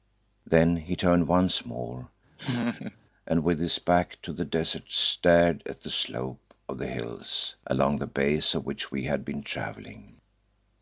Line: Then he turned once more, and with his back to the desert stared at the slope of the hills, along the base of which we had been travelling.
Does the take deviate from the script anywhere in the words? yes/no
no